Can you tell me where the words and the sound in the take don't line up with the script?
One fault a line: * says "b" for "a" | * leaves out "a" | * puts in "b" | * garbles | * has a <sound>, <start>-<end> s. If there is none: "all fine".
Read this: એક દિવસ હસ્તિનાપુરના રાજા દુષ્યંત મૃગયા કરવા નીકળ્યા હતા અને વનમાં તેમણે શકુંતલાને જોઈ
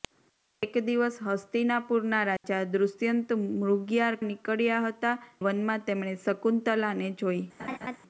* has a dropout, 2.4-2.4 s
* leaves out "કરવા"
* leaves out "અને"
* has a laugh, 7.6-8.0 s